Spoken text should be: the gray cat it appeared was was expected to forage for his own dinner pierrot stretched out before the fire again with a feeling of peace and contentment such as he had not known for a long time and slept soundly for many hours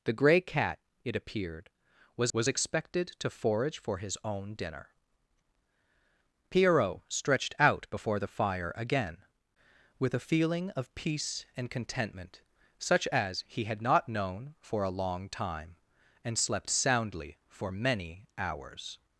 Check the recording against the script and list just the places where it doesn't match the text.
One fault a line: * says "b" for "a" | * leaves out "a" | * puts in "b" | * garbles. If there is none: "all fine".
all fine